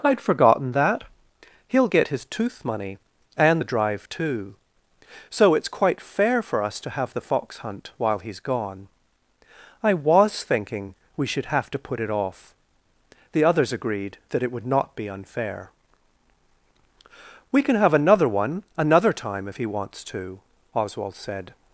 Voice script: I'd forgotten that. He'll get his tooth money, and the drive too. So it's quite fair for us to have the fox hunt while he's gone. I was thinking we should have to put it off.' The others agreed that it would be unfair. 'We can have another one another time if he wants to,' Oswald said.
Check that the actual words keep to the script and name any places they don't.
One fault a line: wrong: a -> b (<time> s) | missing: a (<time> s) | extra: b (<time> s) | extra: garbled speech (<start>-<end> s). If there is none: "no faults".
extra: not (14.7 s)